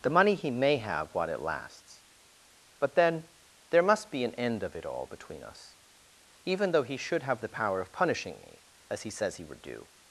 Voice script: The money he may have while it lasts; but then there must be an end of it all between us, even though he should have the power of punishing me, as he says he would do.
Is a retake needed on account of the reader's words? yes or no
no